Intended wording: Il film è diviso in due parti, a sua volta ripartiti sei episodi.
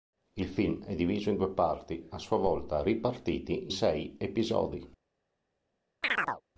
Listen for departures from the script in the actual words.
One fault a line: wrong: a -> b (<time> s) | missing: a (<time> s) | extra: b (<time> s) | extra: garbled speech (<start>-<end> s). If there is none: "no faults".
no faults